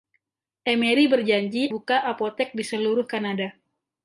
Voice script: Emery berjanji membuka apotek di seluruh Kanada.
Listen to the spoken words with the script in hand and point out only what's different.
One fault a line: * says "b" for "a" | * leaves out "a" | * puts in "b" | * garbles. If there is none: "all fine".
all fine